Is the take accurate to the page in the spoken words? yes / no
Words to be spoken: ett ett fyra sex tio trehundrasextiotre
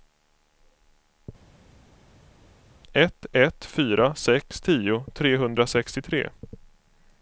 yes